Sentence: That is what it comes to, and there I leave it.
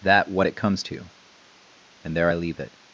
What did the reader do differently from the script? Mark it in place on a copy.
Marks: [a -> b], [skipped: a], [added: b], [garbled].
That [skipped: is] what it comes to, and there I leave it.